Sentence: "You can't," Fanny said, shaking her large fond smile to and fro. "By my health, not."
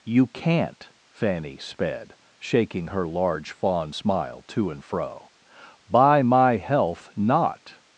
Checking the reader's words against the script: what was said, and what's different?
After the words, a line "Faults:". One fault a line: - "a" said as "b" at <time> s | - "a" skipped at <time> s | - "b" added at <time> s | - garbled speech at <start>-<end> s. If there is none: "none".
"You can't," Fanny sped, shaking her large fond smile to and fro. "By my health, not."
Faults:
- "said" said as "sped" at 1.6 s